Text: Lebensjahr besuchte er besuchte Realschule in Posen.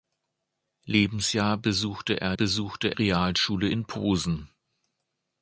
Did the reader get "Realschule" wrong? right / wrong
right